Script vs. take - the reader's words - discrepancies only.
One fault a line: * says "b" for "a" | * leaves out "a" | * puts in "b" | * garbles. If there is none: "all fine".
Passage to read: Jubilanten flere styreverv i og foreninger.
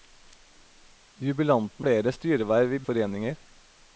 all fine